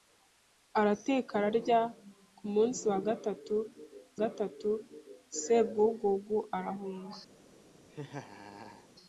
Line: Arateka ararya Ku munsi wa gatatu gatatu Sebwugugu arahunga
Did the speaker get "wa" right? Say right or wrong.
right